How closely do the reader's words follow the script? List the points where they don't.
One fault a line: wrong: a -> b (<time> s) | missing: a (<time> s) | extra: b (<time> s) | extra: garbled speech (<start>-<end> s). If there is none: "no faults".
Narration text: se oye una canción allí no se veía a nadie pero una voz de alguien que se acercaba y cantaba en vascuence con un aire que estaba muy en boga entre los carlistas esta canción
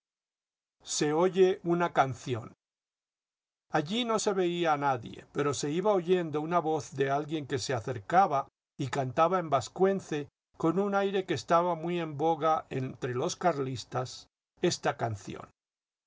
extra: se iba oyendo (5.5 s)